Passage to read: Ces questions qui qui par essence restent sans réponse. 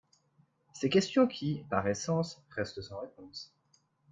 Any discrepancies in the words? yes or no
yes